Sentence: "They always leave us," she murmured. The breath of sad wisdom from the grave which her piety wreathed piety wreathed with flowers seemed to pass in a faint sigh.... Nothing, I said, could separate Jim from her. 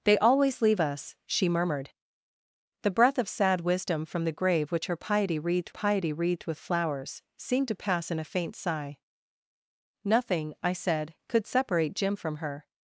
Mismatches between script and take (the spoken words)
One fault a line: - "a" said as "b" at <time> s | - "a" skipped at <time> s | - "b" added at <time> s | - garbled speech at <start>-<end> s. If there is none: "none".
none